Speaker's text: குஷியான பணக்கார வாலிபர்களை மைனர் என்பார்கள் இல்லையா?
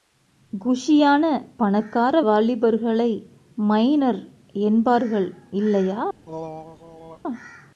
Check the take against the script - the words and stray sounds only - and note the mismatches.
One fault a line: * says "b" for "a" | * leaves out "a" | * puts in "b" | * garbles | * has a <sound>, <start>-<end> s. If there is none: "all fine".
* has a throat clearing, 6.3-7.2 s